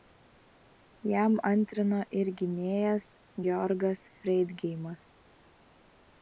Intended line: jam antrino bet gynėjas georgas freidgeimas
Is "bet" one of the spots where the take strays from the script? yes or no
yes